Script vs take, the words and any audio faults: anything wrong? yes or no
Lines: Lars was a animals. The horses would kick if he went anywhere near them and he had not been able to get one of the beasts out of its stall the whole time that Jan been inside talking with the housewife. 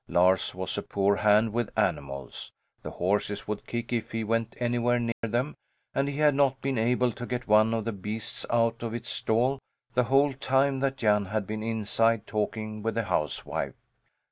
yes